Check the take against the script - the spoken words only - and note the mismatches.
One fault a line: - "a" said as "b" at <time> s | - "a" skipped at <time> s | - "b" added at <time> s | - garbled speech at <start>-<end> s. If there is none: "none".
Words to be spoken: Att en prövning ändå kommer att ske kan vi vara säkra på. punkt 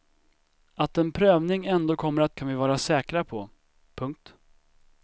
- "ske" skipped at 2.4 s